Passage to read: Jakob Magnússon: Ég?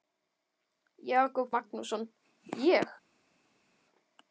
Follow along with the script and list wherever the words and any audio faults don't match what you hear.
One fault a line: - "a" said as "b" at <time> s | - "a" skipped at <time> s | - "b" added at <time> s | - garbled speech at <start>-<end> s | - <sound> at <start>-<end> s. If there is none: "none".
none